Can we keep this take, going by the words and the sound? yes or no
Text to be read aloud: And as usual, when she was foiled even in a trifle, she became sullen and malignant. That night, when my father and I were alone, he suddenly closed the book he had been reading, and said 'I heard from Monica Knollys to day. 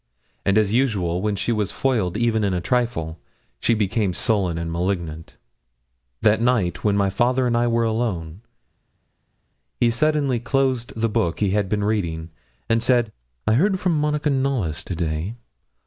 yes